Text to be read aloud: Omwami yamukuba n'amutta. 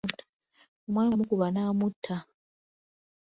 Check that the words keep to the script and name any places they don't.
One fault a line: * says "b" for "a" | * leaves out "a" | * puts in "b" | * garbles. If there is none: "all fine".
all fine